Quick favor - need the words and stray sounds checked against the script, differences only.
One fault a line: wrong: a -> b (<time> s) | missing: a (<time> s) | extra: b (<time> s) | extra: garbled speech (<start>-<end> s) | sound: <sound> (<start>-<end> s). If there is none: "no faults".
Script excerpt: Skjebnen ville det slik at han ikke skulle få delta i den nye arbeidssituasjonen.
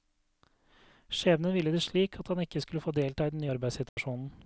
sound: dropout (3.9-4.0 s)